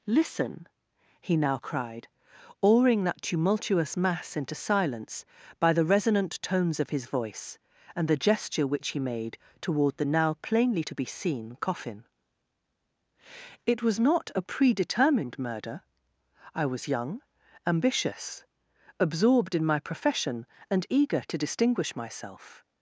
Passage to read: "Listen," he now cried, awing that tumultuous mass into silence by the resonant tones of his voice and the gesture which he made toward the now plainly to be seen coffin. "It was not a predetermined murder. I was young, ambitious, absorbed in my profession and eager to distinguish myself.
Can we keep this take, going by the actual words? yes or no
yes